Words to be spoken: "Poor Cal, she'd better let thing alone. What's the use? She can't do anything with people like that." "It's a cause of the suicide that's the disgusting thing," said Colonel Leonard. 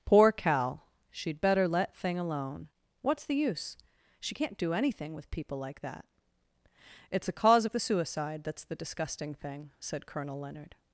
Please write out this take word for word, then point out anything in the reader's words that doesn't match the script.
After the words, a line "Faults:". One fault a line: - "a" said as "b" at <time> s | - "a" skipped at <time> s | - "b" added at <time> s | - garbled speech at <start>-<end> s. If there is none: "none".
"Poor Cal, she'd better let thing alone. What's the use? She can't do anything with people like that." "It's a cause of the suicide that's the disgusting thing," said Colonel Leonard.
Faults:
none